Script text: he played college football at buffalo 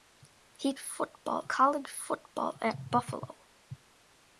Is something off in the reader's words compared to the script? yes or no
yes